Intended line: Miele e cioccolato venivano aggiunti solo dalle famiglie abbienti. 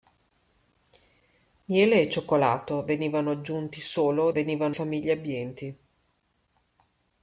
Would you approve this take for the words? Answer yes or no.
no